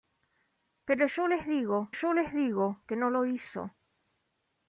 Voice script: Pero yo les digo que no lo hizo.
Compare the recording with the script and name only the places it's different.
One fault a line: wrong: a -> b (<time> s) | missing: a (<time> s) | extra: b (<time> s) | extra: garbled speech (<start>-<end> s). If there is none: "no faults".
extra: yo les digo (1.9 s)